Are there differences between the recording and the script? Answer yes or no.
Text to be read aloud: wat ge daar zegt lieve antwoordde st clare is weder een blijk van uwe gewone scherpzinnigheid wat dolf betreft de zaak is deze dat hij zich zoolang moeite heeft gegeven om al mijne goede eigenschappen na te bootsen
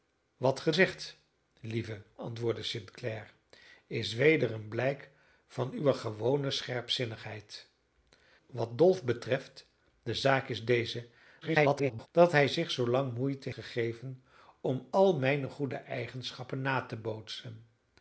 yes